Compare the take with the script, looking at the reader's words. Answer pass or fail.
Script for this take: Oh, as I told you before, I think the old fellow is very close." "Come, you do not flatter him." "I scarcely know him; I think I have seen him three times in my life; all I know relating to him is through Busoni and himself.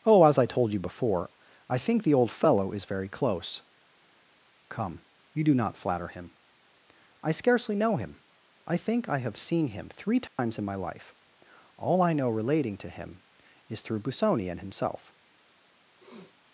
pass